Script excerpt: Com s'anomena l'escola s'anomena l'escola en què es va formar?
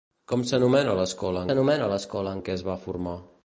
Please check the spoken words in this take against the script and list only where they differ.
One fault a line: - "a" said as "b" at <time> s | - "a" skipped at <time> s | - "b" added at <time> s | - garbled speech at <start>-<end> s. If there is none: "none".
none